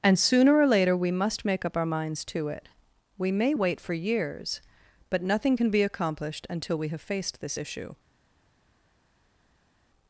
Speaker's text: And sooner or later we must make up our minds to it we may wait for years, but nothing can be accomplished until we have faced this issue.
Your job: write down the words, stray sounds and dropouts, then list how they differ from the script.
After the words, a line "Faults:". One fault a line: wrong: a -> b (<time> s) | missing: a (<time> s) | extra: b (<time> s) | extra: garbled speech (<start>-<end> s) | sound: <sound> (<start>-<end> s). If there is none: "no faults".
And sooner or later we must make up our minds to it we may wait for years, but nothing can be accomplished until we have faced this issue.
Faults:
no faults